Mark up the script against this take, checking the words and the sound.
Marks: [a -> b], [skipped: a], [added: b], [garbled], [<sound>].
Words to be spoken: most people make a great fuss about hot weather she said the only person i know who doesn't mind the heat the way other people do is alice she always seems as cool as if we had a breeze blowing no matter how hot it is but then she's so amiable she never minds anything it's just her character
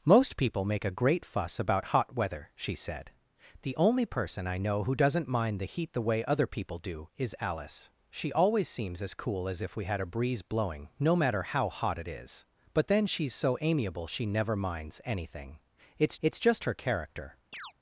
most people make a great fuss about hot weather she said the only person i know who doesn't mind the heat the way other people do is alice she always seems as cool as if we had a breeze blowing no matter how hot it is but then she's so amiable she never minds anything it's [added: it's] just her character [chirp]